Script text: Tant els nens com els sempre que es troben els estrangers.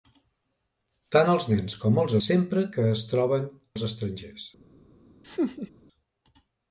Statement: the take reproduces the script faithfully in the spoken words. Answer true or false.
true